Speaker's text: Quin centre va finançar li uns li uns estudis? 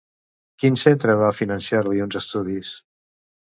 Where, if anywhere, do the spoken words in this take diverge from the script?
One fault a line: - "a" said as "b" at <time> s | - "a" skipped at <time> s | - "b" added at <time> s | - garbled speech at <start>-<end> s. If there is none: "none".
- "li uns" skipped at 2.2 s